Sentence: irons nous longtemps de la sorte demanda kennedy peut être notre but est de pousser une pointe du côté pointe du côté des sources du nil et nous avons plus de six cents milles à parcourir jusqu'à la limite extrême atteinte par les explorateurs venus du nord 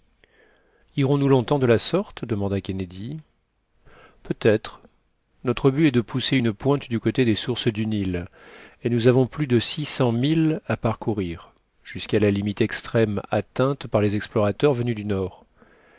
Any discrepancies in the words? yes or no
yes